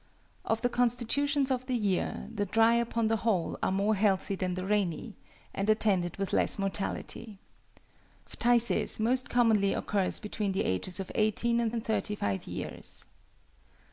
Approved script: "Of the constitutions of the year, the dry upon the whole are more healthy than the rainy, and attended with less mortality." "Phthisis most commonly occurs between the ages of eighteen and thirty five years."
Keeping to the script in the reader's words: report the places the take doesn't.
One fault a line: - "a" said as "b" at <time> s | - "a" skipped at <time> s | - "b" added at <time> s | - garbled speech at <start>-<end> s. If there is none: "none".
- "and" added at 11.7 s